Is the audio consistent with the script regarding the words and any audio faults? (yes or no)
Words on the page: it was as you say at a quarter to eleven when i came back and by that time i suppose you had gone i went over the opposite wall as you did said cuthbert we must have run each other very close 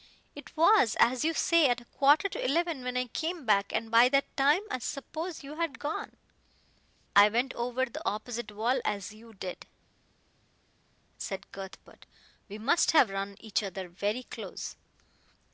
yes